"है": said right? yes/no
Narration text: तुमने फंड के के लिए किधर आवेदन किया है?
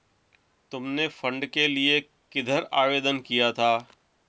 no